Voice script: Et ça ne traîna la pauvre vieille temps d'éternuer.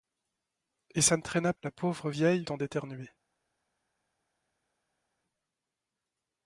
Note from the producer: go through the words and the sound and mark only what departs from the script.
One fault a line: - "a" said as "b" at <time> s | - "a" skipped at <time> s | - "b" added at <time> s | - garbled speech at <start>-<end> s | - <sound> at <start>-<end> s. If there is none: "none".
none